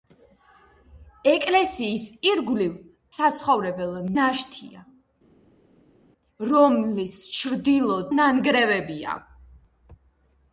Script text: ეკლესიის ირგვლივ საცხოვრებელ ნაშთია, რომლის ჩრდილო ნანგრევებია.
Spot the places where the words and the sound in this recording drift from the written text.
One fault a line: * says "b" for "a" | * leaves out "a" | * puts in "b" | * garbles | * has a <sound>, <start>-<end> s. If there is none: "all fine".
all fine